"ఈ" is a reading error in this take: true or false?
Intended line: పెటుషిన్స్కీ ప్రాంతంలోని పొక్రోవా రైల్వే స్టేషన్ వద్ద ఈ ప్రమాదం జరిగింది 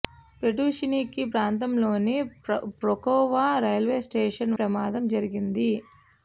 true